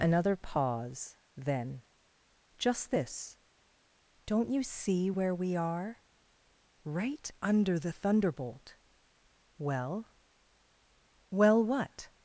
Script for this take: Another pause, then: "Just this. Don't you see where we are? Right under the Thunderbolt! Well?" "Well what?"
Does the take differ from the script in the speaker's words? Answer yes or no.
no